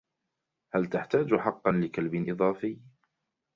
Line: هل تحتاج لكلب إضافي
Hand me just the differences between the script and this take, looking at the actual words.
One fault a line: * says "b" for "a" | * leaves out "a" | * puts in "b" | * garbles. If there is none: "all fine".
* puts in "حقا"